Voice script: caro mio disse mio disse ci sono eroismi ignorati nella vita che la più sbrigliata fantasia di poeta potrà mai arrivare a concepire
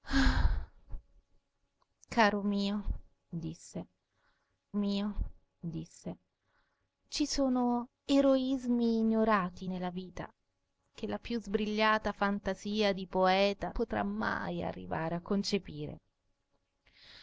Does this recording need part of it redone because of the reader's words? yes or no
no